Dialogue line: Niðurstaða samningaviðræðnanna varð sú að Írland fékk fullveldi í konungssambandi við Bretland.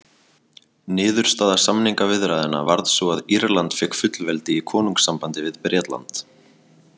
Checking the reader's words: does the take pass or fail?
pass